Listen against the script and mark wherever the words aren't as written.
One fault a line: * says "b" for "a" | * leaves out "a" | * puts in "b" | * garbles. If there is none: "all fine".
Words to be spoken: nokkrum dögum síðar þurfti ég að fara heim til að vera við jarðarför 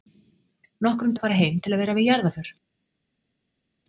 * leaves out "dögum síðar þurfti"